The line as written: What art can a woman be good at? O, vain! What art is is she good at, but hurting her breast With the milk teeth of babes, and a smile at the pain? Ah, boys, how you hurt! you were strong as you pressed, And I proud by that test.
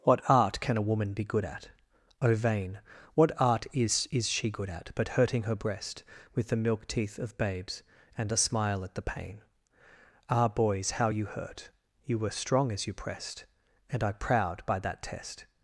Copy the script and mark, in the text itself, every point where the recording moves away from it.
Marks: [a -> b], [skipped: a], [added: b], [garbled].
What art can a woman be good at? O, vain! What art is is she good at, but hurting her breast With the milk teeth of babes, and a smile at the pain? Ah, boys, how you hurt! you were strong as you pressed, And I proud by that test.